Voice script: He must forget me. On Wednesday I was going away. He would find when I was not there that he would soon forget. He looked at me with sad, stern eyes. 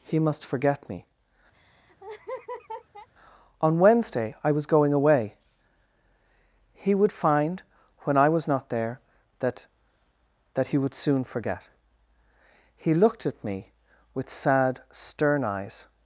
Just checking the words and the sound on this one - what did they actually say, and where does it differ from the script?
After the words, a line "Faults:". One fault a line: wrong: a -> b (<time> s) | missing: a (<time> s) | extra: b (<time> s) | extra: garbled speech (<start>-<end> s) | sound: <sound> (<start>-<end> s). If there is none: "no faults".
He must forget me. On Wednesday I was going away. He would find when I was not there that that he would soon forget. He looked at me with sad, stern eyes.
Faults:
sound: laugh (1.5-3.1 s)
extra: that (10.5 s)